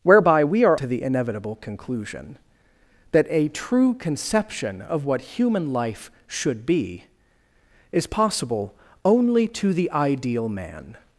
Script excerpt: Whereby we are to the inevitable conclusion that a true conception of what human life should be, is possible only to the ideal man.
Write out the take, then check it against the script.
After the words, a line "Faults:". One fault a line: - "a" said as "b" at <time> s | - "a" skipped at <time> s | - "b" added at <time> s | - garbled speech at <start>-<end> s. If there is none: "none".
Whereby we are to the inevitable conclusion that a true conception of what human life should be, is possible only to the ideal man.
Faults:
none